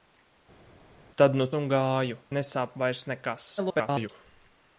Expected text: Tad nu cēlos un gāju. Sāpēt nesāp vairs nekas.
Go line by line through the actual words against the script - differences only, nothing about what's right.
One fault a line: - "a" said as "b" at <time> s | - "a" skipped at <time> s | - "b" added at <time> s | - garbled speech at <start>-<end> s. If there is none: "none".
- "cēlos" skipped at 1.4 s
- "Sāpēt" skipped at 2.2 s
- garbled speech at 3.6-4.1 s